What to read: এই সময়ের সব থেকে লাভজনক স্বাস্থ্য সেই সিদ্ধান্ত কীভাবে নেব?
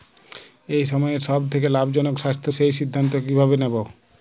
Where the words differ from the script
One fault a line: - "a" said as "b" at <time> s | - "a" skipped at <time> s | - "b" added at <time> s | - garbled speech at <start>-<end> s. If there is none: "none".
none